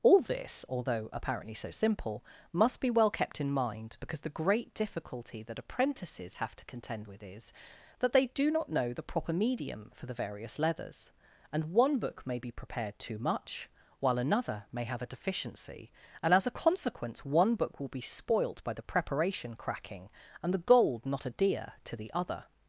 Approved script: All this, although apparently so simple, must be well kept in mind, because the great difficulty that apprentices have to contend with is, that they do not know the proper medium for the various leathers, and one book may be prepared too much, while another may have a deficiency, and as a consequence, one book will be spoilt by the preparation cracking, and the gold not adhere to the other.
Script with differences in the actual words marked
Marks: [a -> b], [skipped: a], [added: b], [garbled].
All this, although apparently so simple, must be well kept in mind, because the great difficulty that apprentices have to contend with is, that they do not know the proper medium for the various leathers, and one book may be prepared too much, while another may have a deficiency, and as a consequence, one book will be spoilt by the preparation cracking, and the gold not adhere to the other.